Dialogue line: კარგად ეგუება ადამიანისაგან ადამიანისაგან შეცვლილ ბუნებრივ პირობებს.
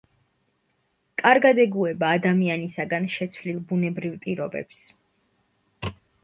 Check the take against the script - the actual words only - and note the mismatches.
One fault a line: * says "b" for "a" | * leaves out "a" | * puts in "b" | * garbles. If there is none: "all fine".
* leaves out "ადამიანისაგან"